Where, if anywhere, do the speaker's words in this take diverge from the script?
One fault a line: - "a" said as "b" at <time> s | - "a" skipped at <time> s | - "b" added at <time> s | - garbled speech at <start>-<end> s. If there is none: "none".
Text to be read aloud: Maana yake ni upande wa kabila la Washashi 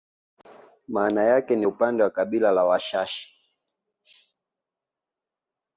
none